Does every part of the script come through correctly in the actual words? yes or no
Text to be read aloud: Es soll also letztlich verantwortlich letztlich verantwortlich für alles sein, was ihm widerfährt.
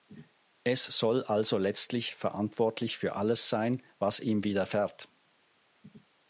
no